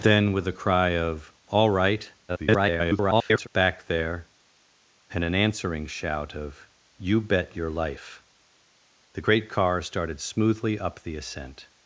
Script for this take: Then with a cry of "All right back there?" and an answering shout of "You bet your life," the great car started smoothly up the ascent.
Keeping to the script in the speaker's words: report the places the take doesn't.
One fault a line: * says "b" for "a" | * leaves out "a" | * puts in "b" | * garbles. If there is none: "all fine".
* garbles